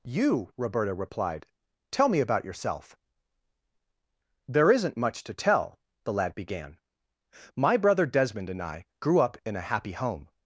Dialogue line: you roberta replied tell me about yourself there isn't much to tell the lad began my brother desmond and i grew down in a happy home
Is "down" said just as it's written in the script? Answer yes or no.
no